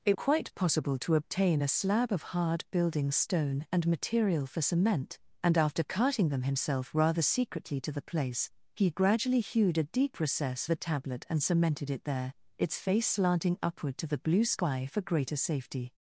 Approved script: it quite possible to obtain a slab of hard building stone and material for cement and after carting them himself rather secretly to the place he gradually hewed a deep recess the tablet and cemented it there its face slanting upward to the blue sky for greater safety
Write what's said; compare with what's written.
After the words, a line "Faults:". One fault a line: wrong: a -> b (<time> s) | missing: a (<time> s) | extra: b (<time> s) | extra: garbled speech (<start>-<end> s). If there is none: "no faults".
it quite possible to obtain a slab of hard building stone and material for cement and after carting them himself rather secretly to the place he gradually hewed a deep recess the tablet and cemented it there its face slanting upward to the blue sky for greater safety
Faults:
no faults